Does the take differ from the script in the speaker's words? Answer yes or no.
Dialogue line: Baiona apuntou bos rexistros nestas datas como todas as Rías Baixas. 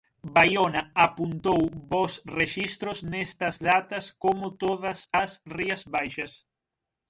no